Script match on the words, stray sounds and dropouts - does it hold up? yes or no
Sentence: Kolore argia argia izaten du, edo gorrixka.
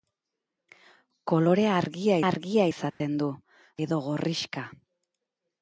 no